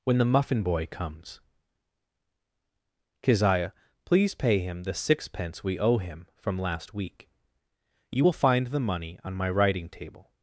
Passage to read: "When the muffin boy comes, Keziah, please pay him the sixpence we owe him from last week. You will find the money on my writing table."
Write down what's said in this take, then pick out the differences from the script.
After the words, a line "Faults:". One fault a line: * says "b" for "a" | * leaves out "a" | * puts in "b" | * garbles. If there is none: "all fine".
"When the muffin boy comes, Keziah, please pay him the sixpence we owe him from last week. You will find the money on my writing table."
Faults:
all fine